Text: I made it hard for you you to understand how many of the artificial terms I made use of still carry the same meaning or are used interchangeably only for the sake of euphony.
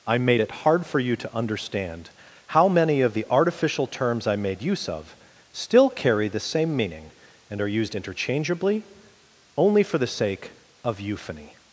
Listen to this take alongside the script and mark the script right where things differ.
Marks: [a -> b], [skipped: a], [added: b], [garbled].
I made it hard for you [skipped: you] to understand how many of the artificial terms I made use of still carry the same meaning [or -> and] are used interchangeably only for the sake of euphony.